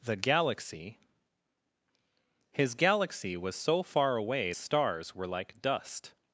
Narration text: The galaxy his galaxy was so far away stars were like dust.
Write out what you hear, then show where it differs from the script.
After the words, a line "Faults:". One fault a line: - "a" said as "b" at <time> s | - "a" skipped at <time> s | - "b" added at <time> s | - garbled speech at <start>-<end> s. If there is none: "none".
The galaxy his galaxy was so far away stars were like dust.
Faults:
none